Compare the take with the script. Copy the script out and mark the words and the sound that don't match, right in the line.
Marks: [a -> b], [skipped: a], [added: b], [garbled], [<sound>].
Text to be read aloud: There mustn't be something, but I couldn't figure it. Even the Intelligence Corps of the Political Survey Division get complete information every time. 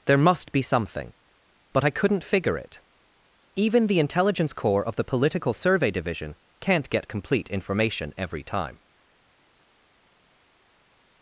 There [mustn't -> must] be something, but I couldn't figure it. Even the Intelligence Corps of the Political Survey Division [added: can't] get complete information every time.